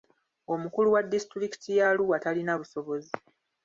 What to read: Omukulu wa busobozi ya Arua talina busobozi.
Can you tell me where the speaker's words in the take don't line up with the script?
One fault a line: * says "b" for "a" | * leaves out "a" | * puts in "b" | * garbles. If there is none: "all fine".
* says "disitulikiti" for "busobozi"